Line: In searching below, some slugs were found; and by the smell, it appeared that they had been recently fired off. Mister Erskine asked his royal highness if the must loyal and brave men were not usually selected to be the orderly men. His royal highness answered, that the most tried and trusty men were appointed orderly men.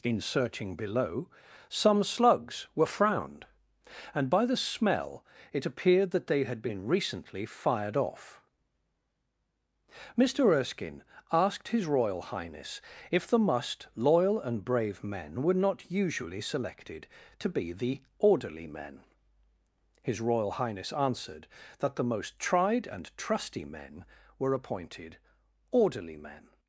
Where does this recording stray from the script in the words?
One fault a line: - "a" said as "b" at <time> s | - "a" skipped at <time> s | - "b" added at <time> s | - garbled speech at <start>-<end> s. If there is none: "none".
- "found" said as "frowned" at 2.9 s